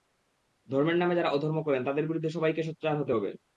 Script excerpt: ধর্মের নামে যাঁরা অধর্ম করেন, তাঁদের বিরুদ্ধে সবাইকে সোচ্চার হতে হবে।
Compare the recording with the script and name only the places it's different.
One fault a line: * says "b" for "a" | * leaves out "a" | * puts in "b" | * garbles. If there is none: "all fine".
all fine